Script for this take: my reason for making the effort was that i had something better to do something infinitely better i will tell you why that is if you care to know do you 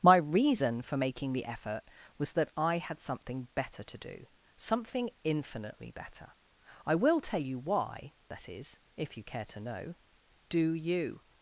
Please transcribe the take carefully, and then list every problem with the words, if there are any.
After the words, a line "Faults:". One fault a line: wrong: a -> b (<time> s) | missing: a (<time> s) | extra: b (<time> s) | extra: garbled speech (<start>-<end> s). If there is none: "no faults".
my reason for making the effort was that i had something better to do something infinitely better i will tell you why that is if you care to know do you
Faults:
no faults